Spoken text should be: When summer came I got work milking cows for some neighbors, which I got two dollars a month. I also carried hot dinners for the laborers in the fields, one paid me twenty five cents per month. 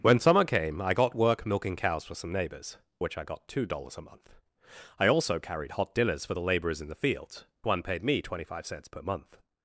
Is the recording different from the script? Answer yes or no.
no